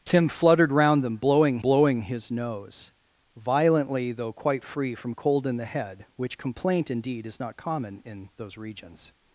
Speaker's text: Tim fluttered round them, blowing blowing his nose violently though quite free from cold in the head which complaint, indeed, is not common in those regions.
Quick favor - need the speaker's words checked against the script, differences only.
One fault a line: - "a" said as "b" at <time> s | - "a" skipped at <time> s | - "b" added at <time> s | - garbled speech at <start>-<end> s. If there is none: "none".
none